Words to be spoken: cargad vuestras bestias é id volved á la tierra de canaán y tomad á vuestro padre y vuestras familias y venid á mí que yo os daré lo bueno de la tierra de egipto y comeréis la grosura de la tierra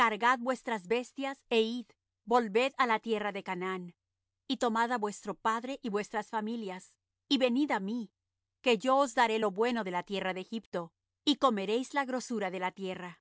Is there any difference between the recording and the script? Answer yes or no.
no